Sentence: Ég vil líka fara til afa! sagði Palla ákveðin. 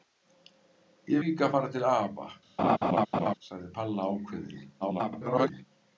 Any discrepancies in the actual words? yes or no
yes